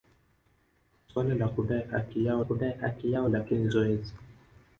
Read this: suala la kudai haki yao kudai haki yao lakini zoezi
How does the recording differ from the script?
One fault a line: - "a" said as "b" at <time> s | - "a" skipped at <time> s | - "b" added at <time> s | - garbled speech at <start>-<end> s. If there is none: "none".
none